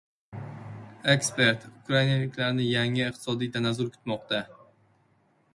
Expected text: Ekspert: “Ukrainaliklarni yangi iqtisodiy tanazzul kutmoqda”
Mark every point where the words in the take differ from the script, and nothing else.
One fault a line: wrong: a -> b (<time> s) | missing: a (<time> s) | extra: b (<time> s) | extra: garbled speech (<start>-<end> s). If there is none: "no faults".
no faults